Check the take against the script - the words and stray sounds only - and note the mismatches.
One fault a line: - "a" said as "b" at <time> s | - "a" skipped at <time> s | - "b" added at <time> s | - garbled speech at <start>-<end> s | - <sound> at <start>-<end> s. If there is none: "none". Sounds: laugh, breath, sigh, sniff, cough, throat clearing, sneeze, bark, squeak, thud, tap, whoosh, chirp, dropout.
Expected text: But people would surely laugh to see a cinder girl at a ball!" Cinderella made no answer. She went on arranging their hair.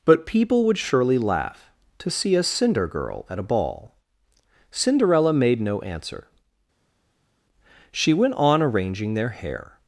none